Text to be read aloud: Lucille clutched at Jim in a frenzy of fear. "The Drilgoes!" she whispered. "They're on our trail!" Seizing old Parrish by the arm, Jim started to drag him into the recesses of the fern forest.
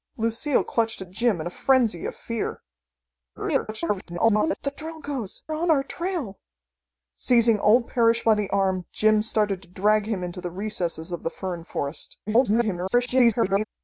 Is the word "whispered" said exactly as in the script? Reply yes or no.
no